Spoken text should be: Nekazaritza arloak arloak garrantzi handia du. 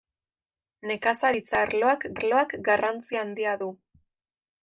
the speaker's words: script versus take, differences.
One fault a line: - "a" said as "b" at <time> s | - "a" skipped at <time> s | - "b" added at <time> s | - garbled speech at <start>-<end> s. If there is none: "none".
none